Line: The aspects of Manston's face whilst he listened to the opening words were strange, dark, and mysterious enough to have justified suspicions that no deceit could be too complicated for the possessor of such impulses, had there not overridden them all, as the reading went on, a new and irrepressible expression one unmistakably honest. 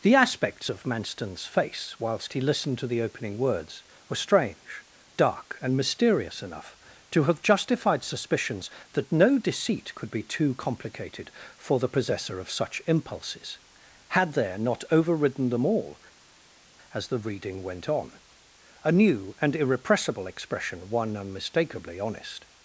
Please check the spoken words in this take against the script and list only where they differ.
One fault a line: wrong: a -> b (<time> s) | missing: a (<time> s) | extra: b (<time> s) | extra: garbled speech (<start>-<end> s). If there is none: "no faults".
no faults